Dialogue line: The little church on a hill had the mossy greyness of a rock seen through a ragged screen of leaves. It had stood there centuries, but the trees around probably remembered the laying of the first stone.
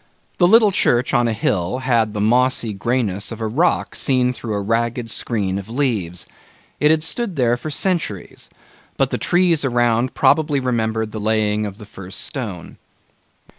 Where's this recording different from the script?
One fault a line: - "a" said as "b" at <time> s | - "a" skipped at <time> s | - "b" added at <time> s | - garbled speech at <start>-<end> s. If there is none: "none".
- "for" added at 7.5 s